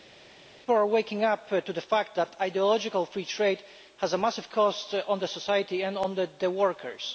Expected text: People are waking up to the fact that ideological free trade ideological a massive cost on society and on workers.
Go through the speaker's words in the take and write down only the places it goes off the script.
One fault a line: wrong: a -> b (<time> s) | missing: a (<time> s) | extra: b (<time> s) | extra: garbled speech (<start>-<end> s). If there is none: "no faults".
wrong: ideological -> has (4.0 s)